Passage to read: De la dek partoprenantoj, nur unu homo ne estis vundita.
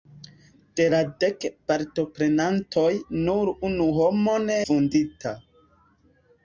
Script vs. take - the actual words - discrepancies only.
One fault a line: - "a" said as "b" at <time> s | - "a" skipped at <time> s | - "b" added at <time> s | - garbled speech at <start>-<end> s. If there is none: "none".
- "estis" skipped at 4.6 s